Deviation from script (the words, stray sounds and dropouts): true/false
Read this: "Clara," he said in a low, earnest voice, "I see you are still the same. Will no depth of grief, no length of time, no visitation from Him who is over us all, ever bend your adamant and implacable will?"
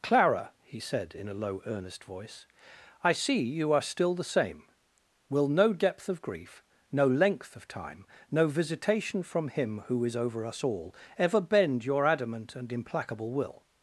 false